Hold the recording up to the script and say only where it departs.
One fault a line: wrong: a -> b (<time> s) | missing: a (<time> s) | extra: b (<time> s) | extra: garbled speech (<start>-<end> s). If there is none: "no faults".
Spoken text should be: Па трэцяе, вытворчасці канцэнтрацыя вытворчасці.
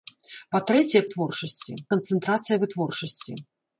no faults